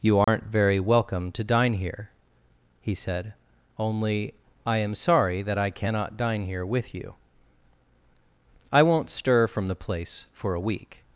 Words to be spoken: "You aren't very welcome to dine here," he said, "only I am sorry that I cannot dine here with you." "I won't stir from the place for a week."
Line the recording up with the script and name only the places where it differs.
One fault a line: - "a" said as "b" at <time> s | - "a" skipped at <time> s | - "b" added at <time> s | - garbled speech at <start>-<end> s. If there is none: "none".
none